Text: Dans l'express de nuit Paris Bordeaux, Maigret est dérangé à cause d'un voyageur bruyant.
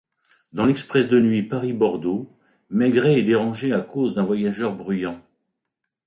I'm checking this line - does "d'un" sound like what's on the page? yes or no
yes